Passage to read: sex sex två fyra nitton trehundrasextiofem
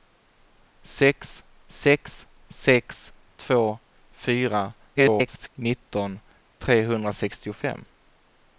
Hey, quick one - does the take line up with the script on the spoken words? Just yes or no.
no